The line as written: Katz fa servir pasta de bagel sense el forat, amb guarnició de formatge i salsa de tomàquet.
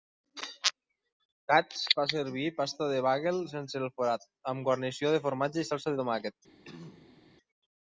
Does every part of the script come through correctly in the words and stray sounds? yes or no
no